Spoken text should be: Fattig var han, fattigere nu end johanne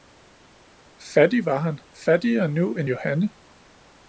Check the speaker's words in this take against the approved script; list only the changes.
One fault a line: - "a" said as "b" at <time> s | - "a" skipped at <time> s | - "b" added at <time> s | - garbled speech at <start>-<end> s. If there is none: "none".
none